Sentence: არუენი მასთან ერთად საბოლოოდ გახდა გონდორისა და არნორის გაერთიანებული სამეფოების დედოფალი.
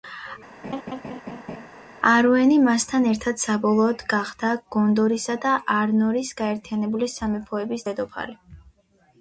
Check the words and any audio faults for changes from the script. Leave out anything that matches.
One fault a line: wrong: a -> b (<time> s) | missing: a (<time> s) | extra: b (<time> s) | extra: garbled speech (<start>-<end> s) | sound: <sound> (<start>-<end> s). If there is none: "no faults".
sound: laugh (0.6-1.7 s)